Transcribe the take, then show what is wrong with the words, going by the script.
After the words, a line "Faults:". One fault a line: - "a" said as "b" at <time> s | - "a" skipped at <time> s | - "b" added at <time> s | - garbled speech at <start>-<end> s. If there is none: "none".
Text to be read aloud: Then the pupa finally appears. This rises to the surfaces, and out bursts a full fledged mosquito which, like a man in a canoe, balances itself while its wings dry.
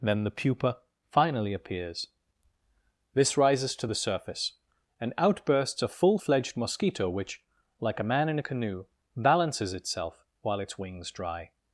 Then the pupa finally appears. This rises to the surface, and out bursts a full fledged mosquito which, like a man in a canoe, balances itself while its wings dry.
Faults:
- "surfaces" said as "surface" at 4.0 s